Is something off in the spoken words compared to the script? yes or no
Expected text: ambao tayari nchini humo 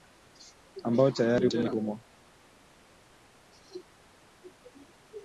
no